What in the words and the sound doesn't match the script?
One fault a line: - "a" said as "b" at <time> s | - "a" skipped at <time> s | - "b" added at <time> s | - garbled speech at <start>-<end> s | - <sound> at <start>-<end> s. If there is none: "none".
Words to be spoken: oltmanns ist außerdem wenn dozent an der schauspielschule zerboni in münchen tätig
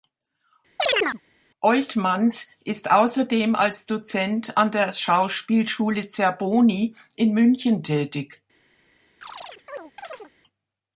- chirp at 0.8-1.2 s
- "wenn" said as "als" at 3.5 s
- chirp at 9.2-10.3 s